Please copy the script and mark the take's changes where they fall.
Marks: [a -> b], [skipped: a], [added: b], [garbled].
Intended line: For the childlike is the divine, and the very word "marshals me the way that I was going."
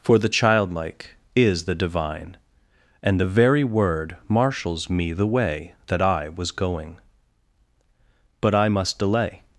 For the childlike is the divine, and the very word "marshals me the way that I was going." [added: But I must delay]